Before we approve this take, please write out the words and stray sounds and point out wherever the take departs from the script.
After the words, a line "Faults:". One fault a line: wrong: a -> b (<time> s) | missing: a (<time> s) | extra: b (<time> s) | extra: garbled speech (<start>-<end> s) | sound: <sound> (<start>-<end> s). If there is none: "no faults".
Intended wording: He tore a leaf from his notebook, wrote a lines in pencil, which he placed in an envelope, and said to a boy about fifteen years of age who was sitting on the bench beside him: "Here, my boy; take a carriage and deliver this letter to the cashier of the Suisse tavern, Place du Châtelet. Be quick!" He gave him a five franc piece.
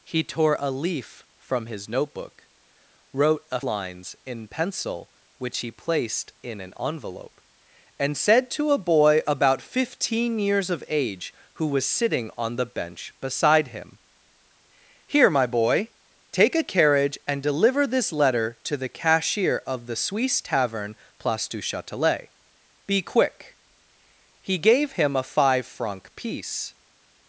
He tore a leaf from his notebook, wrote a lines in pencil, which he placed in an envelope, and said to a boy about fifteen years of age who was sitting on the bench beside him: "Here, my boy; take a carriage and deliver this letter to the cashier of the Suisse tavern, Place du Châtelet. Be quick!" He gave him a five franc piece.
Faults:
no faults